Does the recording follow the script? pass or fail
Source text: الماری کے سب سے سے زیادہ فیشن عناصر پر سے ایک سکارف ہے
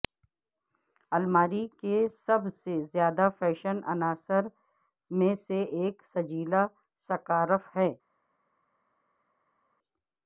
fail